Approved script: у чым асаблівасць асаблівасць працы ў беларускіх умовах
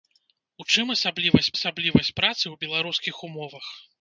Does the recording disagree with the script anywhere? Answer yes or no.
no